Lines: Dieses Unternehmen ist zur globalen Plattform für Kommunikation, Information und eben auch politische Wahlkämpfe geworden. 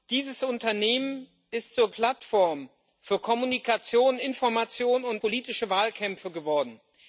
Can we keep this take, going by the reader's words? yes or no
no